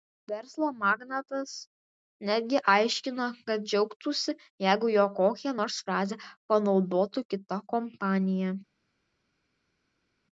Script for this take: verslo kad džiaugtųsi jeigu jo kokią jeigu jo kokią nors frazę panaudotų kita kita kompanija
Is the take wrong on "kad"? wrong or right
wrong